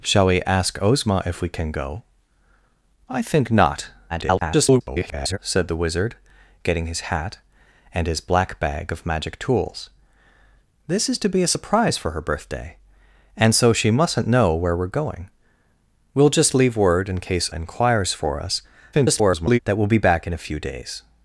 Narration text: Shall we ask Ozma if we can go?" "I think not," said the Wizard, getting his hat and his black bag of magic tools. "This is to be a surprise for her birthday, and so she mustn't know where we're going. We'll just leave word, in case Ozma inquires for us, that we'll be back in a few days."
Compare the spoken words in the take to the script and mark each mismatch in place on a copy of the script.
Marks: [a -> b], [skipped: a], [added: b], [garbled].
Shall we ask Ozma if we can go?" "I think not," [garbled] said the Wizard, getting his hat and his black bag of magic tools. "This is to be a surprise for her birthday, and so she mustn't know where we're going. We'll just leave word, in case [skipped: Ozma] inquires for us, [garbled] that we'll be back in a few days."